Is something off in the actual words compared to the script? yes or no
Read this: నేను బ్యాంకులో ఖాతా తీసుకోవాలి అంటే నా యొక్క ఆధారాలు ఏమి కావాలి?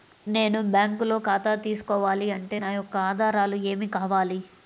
no